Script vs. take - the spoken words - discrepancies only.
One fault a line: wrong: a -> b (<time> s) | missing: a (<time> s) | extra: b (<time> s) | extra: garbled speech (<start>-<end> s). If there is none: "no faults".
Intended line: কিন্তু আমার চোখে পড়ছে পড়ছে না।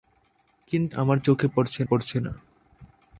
no faults